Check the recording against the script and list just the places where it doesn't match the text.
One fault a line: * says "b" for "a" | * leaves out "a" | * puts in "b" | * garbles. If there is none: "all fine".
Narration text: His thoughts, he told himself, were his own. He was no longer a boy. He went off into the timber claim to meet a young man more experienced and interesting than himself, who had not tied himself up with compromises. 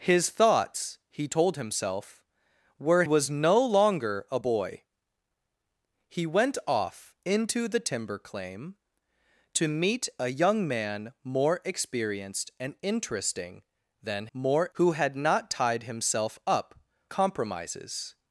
* leaves out "his own He"
* says "more" for "himself"
* leaves out "with"